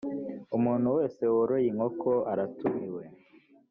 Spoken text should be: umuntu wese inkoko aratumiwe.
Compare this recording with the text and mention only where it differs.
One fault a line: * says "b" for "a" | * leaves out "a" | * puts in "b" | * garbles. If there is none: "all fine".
* puts in "woroye"